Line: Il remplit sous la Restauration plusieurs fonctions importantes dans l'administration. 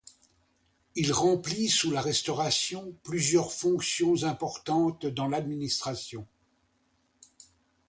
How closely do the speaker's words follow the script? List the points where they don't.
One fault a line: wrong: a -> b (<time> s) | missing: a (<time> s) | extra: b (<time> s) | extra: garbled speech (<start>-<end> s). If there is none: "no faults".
no faults